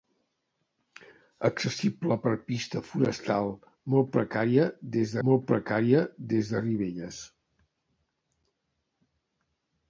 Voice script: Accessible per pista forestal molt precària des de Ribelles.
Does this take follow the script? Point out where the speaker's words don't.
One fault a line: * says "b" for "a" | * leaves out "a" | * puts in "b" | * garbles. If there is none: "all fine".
* puts in "molt precària des"